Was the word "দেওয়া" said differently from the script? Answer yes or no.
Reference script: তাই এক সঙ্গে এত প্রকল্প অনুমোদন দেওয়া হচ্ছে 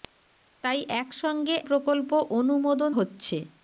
yes